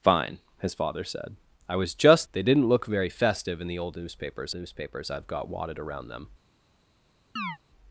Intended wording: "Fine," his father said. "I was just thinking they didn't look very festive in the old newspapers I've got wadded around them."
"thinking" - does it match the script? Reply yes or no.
no